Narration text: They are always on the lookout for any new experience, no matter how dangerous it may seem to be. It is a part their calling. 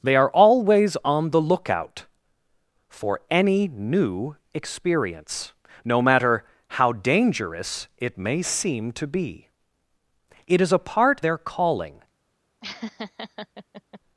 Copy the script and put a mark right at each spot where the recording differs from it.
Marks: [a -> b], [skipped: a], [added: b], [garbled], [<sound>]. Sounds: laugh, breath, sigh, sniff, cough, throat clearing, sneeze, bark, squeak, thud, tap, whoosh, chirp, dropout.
They are always on the lookout for any new experience, no matter how dangerous it may seem to be. It is a part their calling. [laugh]